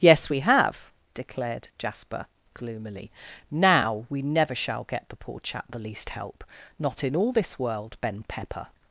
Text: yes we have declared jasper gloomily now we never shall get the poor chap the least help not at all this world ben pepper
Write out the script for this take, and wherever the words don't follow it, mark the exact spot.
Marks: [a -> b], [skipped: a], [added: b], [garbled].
yes we have declared jasper gloomily now we never shall get the poor chap the least help not [at -> in] all this world ben pepper